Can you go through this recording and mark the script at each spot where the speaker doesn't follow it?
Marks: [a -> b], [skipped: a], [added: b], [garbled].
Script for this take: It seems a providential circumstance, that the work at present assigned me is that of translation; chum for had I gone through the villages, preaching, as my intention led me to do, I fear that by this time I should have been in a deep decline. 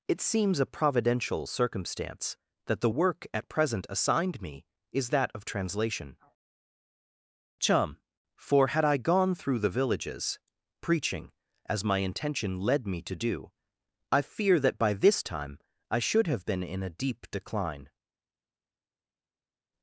It seems a providential circumstance, that the work at present assigned me is that of translation; chum for had I gone through the villages, preaching, as my intention led me to do, I fear that by this time I should have been in a deep decline.